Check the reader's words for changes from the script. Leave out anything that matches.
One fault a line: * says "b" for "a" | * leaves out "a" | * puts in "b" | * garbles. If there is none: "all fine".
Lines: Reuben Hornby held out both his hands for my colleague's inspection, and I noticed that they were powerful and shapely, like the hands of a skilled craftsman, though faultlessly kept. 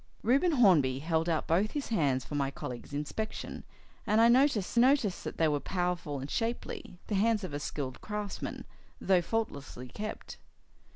* puts in "noticed"
* leaves out "like"